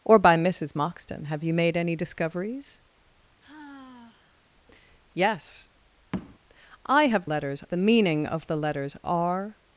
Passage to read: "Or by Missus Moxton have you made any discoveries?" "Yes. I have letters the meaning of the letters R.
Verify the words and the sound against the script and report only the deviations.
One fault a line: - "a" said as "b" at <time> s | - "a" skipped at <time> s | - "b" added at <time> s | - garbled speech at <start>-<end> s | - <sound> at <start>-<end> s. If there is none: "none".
- sigh at 3.4-4.4 s
- tap at 6.1-6.4 s